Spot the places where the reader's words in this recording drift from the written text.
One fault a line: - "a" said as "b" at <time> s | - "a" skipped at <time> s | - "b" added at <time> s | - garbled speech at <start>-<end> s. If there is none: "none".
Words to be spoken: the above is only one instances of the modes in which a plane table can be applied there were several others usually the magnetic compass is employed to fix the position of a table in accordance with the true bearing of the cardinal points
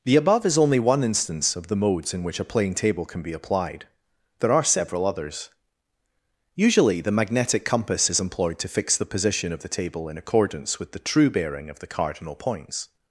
- "instances" said as "instance" at 1.0 s
- "were" said as "are" at 4.5 s
- "a" said as "the" at 9.6 s